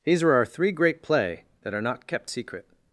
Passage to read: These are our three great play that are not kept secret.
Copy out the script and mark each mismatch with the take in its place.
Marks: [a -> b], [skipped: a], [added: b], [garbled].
These are our three great play that are not kept secret.